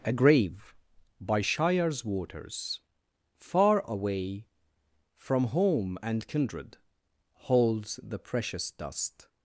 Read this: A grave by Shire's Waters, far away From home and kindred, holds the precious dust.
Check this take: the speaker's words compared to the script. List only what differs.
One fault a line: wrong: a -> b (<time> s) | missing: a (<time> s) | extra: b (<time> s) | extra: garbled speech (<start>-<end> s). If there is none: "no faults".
no faults